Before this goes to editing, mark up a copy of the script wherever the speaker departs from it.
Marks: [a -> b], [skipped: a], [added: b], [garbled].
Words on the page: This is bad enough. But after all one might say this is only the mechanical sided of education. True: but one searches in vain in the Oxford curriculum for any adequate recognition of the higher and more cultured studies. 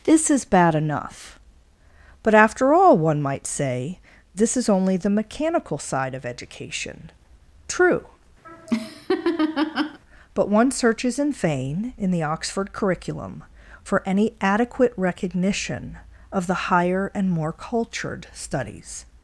This is bad enough. But after all one might say this is only the mechanical [sided -> side] of education. True: but one searches in vain in the Oxford curriculum for any adequate recognition of the higher and more cultured studies.